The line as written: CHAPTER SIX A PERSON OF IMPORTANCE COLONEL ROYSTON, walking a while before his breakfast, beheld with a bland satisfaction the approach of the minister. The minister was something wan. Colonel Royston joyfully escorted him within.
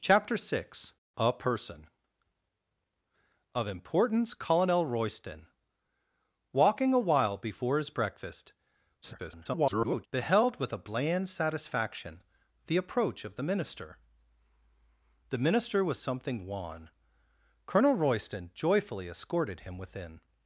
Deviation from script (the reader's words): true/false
true